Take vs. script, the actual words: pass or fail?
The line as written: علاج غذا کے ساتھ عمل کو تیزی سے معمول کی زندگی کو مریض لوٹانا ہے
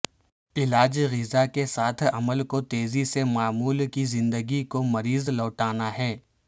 pass